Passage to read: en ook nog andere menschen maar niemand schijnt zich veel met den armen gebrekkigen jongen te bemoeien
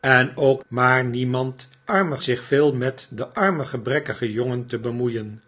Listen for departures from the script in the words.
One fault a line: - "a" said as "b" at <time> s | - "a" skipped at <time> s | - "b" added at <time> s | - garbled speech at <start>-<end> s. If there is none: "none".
- "nog andere menschen" skipped at 0.6 s
- "schijnt" said as "armen" at 1.8 s